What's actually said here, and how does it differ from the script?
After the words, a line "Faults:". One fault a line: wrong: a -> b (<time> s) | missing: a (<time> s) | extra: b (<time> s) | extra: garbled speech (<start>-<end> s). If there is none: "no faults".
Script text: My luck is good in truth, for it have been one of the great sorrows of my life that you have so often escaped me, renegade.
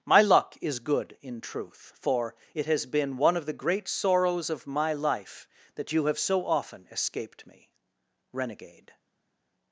My luck is good in truth, for it has been one of the great sorrows of my life that you have so often escaped me, renegade.
Faults:
wrong: have -> has (2.7 s)